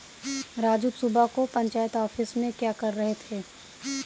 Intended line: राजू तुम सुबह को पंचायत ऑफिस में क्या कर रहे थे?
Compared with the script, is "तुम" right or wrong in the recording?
wrong